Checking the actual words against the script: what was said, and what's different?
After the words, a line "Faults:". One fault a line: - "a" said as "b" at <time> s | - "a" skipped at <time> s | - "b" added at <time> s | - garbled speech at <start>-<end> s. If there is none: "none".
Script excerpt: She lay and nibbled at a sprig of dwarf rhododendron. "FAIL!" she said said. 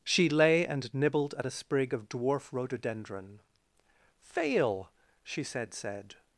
She lay and nibbled at a sprig of dwarf rhododendron. "FAIL!" she said said.
Faults:
none